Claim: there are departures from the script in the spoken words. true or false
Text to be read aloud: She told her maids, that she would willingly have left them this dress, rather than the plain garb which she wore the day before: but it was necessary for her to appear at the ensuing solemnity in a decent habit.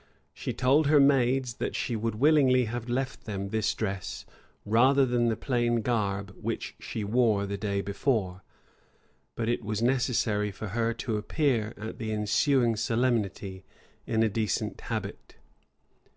false